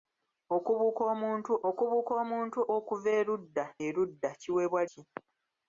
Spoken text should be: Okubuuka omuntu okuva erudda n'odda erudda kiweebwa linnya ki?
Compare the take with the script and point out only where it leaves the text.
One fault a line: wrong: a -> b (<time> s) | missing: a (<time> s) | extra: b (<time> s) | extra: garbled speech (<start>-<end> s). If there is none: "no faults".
extra: okubuuka omuntu (1.7 s)
missing: n'odda (3.6 s)
missing: linnya (4.8 s)